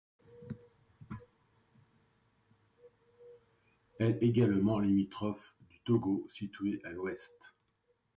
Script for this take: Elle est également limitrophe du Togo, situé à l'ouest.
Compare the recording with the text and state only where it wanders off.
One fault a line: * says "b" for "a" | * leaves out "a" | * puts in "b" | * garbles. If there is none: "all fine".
* leaves out "est"